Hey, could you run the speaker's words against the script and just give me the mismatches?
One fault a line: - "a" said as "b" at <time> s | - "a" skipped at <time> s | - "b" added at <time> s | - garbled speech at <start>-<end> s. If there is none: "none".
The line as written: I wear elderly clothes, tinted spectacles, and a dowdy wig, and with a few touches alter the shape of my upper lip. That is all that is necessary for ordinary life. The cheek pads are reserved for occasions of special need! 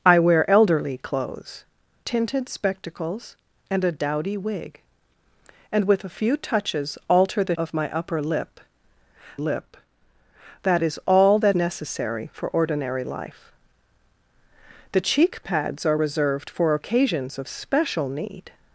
- "shape" skipped at 7.5 s
- "lip" added at 9.4 s
- "is" skipped at 11.6 s